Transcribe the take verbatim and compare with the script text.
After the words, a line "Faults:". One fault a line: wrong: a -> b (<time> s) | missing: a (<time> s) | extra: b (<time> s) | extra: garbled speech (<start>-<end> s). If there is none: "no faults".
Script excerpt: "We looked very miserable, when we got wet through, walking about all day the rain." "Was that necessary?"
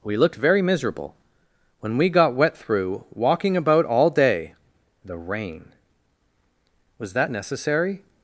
"We looked very miserable, when we got wet through, walking about all day the rain." "Was that necessary?"
Faults:
no faults